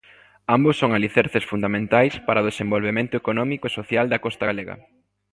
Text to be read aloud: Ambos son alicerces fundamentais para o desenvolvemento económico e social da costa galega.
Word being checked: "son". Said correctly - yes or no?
yes